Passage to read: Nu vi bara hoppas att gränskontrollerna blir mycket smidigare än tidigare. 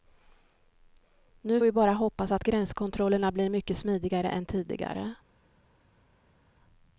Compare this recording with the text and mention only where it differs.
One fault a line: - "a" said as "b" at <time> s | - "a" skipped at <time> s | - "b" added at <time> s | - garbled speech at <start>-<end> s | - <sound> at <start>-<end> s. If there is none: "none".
none